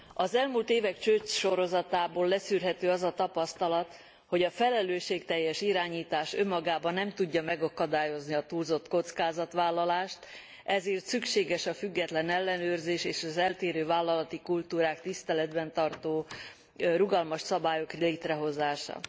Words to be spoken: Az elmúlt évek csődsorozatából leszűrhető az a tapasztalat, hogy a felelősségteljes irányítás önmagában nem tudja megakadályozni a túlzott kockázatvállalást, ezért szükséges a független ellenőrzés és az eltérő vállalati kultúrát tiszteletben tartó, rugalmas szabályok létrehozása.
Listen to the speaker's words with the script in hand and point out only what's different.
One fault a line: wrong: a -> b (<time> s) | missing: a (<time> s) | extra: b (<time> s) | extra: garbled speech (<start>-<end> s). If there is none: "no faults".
no faults